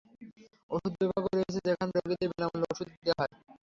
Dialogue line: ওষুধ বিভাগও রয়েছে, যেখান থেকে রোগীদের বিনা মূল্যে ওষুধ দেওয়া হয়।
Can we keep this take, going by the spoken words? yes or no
no